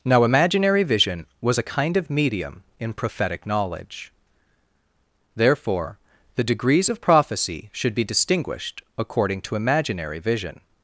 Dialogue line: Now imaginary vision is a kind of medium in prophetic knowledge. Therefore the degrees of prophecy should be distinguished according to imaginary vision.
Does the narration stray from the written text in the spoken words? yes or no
yes